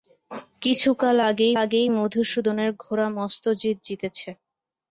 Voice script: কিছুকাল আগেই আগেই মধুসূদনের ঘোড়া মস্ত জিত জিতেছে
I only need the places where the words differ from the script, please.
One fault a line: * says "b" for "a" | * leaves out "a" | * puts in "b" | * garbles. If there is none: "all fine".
all fine